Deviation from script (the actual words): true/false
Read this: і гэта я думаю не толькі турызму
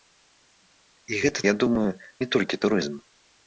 false